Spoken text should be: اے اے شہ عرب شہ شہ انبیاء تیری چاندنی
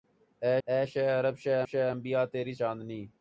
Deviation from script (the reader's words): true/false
false